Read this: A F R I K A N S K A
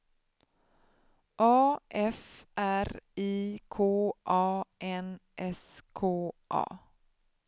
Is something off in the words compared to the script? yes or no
no